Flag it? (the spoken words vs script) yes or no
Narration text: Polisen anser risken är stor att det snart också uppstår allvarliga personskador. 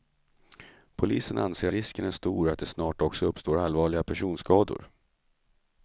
no